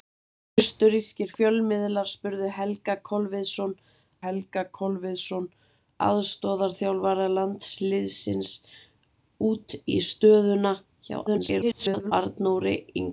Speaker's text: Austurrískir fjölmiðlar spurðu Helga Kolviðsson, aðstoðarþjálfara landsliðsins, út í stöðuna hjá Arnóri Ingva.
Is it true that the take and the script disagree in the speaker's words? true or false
true